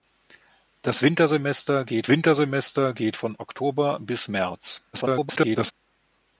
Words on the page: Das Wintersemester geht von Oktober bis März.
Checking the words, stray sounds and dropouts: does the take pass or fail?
fail